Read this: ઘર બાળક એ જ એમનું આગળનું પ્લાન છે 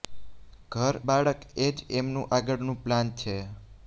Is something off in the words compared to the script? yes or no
no